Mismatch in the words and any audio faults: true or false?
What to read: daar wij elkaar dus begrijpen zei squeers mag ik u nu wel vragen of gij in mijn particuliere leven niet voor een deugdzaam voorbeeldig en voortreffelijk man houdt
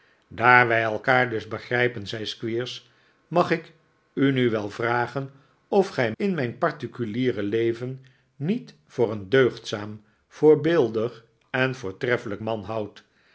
false